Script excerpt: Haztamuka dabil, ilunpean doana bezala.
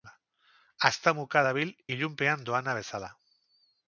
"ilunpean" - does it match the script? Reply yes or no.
yes